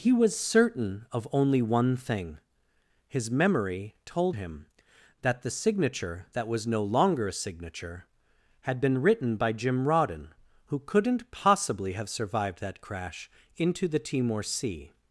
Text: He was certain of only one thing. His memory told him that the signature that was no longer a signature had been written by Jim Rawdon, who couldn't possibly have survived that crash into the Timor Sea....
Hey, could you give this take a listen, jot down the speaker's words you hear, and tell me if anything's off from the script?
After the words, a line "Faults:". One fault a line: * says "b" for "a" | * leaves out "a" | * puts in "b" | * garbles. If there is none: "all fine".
He was certain of only one thing. His memory told him that the signature that was no longer a signature had been written by Jim Rawdon, who couldn't possibly have survived that crash into the Timor Sea....
Faults:
all fine